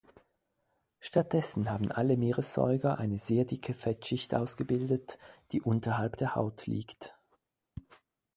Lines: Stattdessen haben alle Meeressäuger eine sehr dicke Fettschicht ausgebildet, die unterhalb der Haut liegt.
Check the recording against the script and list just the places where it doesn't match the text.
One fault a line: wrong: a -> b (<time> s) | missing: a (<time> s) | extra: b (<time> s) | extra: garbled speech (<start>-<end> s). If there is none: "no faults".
no faults